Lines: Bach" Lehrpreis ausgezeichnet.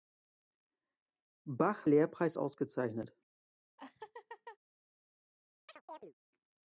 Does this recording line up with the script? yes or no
yes